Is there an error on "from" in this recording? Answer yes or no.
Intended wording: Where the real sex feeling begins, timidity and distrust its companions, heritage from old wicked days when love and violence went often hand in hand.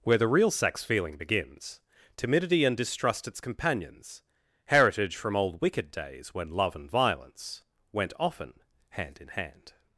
no